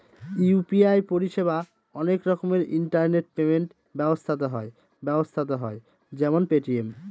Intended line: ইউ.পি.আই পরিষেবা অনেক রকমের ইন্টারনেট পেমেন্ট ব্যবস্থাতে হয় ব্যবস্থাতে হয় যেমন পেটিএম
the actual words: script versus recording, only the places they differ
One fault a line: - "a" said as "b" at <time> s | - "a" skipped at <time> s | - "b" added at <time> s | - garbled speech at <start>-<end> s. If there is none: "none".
none